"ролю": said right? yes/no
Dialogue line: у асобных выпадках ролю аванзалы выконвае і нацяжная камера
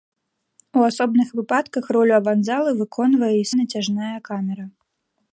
yes